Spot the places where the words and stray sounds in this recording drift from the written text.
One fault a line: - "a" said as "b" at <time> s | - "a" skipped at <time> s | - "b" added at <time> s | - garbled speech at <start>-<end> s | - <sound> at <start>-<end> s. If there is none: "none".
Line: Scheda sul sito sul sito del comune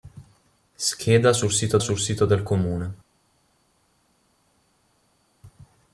none